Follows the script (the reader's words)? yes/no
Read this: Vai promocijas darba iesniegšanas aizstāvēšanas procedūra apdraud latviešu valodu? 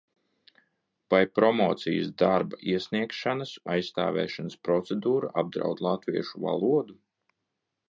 yes